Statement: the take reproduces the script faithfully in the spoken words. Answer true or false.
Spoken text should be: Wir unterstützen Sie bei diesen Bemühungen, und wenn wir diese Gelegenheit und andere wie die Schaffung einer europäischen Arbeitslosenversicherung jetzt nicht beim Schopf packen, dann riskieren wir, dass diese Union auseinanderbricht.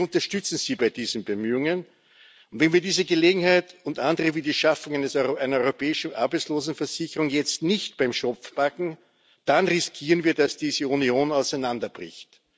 true